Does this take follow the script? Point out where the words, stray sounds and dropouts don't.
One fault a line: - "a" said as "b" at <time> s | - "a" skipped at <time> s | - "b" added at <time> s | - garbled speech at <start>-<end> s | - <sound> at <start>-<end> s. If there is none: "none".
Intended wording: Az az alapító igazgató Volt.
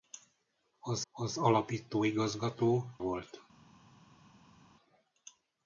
none